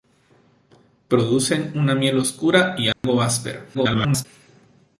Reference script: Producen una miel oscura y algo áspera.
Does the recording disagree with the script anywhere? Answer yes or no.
yes